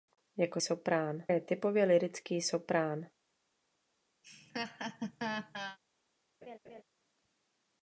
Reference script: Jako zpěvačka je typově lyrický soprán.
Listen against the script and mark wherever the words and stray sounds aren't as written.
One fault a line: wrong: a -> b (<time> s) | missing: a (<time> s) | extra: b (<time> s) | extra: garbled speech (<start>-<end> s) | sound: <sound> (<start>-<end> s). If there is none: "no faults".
wrong: zpěvačka -> soprán (0.6 s)
sound: laugh (4.2-5.8 s)
sound: laugh (6.4-6.8 s)